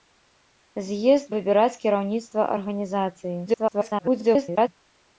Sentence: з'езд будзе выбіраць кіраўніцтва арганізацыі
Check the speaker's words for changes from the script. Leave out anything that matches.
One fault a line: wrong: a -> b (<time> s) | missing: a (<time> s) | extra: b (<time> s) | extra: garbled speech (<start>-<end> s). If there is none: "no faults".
missing: будзе (1.3 s)
extra: garbled speech (3.5-4.7 s)